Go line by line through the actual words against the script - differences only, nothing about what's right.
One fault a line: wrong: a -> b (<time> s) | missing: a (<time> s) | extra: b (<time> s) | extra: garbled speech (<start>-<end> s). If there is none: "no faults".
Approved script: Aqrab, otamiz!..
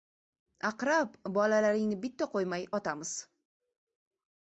extra: bolalaringni bitta qo‘ymay (1.4 s)